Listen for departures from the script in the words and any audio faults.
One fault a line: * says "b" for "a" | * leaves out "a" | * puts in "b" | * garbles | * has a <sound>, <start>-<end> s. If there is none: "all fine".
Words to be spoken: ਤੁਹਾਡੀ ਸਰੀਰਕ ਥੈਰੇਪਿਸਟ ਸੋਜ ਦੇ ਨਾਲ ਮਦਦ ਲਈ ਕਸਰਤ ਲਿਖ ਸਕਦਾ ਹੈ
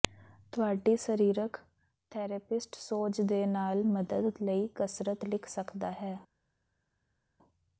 all fine